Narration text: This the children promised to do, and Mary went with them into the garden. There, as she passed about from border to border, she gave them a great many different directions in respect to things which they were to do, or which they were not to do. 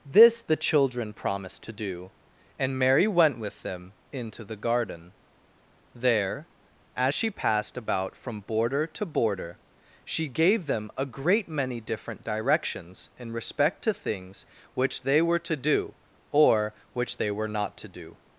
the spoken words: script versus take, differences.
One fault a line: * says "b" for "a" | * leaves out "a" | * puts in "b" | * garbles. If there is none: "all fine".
all fine